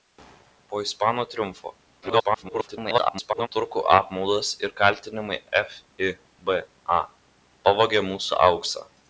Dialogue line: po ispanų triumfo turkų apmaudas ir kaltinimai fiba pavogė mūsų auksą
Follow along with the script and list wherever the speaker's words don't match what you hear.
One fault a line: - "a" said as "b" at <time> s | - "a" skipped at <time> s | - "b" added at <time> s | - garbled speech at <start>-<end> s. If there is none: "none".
- garbled speech at 2.0-3.5 s